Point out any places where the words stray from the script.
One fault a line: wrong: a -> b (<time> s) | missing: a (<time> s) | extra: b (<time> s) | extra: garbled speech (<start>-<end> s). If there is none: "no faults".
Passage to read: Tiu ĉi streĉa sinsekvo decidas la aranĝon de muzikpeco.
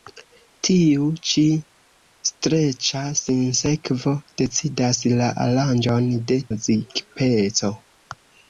no faults